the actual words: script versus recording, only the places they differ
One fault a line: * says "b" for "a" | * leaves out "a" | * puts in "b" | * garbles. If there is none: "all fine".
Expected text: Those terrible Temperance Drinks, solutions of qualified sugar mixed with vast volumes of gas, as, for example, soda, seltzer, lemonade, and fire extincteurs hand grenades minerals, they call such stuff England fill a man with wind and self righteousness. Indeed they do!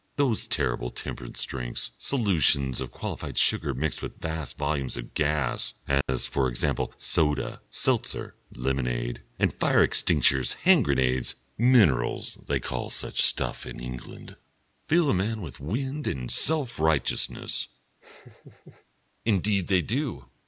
* puts in "in"